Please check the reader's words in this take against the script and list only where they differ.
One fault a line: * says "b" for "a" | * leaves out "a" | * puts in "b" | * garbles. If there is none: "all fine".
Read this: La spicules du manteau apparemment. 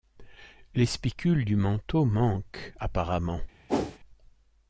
* says "Les" for "La"
* puts in "manquent"